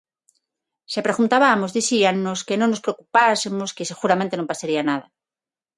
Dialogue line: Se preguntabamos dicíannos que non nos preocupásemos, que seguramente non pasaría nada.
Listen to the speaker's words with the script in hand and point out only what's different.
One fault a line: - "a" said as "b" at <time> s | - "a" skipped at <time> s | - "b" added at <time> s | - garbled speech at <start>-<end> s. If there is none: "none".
none